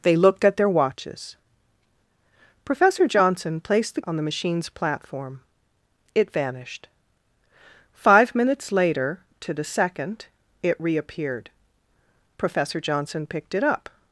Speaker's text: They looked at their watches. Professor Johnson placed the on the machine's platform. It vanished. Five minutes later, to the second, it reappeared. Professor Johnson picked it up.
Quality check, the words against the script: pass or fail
pass